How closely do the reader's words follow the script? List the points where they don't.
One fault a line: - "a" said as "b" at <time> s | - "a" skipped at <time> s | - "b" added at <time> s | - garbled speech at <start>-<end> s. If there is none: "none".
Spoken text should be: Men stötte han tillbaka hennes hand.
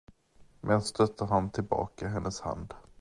none